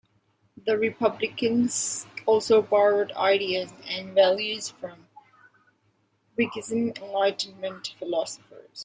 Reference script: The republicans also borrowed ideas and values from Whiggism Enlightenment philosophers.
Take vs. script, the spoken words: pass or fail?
pass